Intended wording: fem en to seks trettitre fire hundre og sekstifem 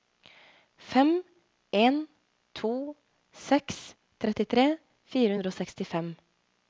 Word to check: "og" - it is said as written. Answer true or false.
true